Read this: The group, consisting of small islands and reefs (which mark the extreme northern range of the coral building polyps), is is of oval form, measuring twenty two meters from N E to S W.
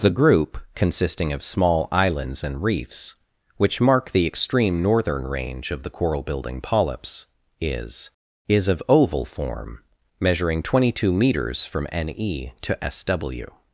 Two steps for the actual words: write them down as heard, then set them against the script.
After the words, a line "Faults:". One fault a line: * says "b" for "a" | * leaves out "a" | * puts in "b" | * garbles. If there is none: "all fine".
The group, consisting of small islands and reefs (which mark the extreme northern range of the coral building polyps), is is of oval form, measuring twenty two meters from N E to S W.
Faults:
all fine